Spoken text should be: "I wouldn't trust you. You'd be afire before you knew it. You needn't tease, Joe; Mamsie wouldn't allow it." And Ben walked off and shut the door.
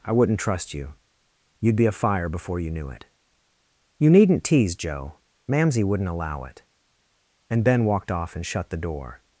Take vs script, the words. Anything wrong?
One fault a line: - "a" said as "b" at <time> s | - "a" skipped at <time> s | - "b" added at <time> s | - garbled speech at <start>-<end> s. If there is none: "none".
none